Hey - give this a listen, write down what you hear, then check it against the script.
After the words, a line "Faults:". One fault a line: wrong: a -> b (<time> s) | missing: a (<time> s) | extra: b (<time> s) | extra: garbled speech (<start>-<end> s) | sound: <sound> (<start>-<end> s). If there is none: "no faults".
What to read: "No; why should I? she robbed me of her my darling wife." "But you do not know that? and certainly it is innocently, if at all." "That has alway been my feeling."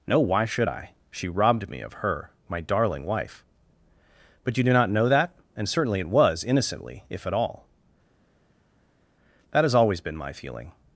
"No; why should I? she robbed me of her my darling wife." "But you do not know that? and certainly it was innocently, if at all." "That has always been my feeling."
Faults:
wrong: is -> was (6.1 s)
wrong: alway -> always (9.7 s)